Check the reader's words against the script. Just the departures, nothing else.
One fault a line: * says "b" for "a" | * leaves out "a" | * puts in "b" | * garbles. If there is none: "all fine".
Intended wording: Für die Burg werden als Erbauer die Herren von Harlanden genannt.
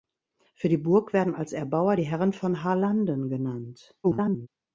* garbles